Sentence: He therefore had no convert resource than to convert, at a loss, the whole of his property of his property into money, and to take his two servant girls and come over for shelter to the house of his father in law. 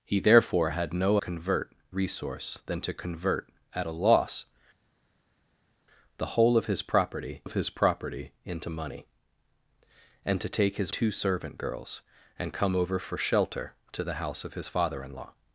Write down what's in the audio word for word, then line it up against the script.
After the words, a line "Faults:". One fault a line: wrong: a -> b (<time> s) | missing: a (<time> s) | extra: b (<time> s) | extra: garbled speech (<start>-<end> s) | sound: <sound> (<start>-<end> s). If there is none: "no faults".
He therefore had no convert resource than to convert, at a loss, the whole of his property of his property into money, and to take his two servant girls and come over for shelter to the house of his father in law.
Faults:
no faults